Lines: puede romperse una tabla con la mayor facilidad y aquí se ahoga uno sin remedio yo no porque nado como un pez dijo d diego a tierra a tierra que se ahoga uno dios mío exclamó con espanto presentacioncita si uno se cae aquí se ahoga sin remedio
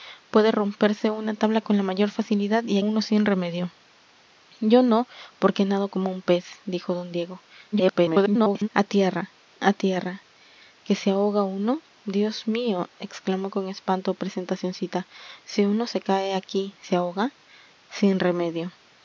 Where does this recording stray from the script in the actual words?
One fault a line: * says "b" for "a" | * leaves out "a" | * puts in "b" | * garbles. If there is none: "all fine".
* leaves out "aquí se ahoga"
* garbles